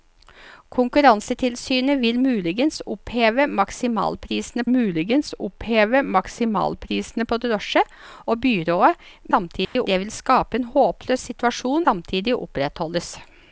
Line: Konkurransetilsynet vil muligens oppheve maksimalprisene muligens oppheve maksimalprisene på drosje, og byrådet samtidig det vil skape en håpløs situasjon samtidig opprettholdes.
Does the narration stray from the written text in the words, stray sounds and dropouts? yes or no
yes